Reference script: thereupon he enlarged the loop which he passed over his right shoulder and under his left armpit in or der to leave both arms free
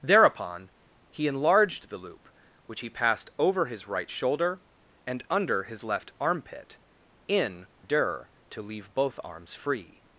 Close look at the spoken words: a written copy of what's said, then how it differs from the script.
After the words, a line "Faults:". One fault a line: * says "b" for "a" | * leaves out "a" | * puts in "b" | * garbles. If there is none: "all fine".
thereupon he enlarged the loop which he passed over his right shoulder and under his left armpit in der to leave both arms free
Faults:
* leaves out "or"